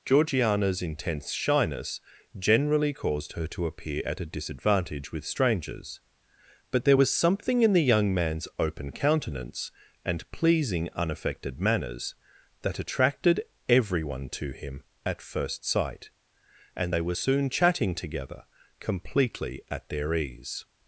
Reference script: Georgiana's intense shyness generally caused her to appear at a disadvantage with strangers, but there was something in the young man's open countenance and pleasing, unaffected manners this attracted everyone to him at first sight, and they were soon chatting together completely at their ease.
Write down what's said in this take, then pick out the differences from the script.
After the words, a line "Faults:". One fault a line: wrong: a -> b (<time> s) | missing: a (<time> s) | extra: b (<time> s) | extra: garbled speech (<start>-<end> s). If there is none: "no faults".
Georgiana's intense shyness generally caused her to appear at a disadvantage with strangers, but there was something in the young man's open countenance and pleasing, unaffected manners that attracted everyone to him at first sight, and they were soon chatting together completely at their ease.
Faults:
wrong: this -> that (12.6 s)